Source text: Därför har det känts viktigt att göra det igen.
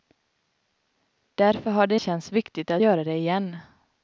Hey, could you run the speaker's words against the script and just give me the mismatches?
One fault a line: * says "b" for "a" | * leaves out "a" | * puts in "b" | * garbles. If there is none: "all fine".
all fine